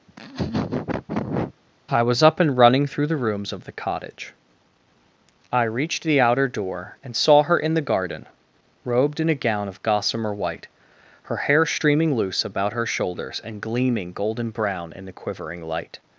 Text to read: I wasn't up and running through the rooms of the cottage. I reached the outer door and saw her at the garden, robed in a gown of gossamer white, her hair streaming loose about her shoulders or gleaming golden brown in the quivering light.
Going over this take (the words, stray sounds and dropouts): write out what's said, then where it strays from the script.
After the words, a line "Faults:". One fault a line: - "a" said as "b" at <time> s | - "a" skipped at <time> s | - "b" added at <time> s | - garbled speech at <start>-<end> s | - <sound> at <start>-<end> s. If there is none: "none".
I was up and running through the rooms of the cottage. I reached the outer door and saw her in the garden, robed in a gown of gossamer white, her hair streaming loose about her shoulders and gleaming golden brown in the quivering light.
Faults:
- laugh at 0.1-1.6 s
- "wasn't" said as "was" at 2.0 s
- "at" said as "in" at 7.6 s
- "or" said as "and" at 13.4 s